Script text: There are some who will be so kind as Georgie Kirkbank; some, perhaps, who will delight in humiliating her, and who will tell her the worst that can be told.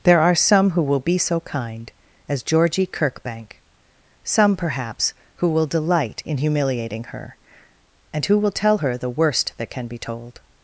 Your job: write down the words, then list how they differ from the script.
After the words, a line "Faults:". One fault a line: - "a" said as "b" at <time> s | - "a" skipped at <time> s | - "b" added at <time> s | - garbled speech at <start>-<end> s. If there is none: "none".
There are some who will be so kind as Georgie Kirkbank; some, perhaps, who will delight in humiliating her, and who will tell her the worst that can be told.
Faults:
none